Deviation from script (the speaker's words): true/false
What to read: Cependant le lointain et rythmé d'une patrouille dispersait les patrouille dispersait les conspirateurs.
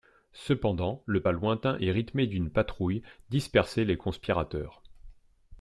true